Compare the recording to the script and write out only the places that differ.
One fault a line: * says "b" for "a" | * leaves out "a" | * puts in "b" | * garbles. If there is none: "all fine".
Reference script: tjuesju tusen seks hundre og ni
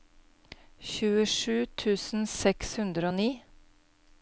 all fine